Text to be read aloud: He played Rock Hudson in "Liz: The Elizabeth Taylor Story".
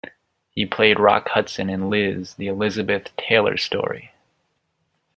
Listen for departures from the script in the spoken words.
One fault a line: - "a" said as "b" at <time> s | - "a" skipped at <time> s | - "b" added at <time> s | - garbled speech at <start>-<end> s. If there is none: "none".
none